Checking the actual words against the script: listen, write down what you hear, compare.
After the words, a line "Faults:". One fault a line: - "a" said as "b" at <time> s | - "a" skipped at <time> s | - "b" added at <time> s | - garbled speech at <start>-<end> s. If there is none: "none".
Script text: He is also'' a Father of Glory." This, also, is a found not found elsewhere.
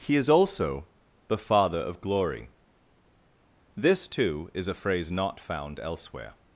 He is also'' the Father of Glory." This, too, is a phrase not found elsewhere.
Faults:
- "a" said as "the" at 1.3 s
- "also" said as "too" at 4.1 s
- "found" said as "phrase" at 4.7 s